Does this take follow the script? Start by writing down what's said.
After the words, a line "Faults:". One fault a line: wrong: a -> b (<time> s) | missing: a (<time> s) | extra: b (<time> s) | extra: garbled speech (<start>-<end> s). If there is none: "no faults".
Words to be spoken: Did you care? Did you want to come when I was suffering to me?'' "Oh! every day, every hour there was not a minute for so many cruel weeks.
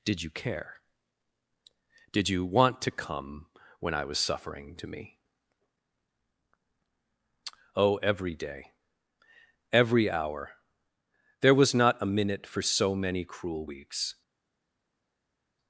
Did you care? Did you want to come when I was suffering to me?'' "Oh! every day, every hour there was not a minute for so many cruel weeks.
Faults:
no faults